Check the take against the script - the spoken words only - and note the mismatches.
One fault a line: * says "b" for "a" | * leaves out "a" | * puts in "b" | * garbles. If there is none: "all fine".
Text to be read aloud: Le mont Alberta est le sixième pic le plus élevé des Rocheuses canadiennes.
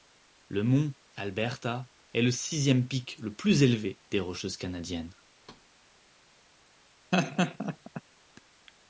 all fine